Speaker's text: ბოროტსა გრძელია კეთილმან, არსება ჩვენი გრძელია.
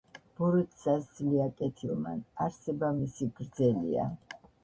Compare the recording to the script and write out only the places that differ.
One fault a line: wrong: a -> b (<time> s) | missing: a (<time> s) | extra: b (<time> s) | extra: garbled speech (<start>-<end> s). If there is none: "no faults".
wrong: გრძელია -> სძლია (1.1 s)
wrong: ჩვენი -> მისი (3.0 s)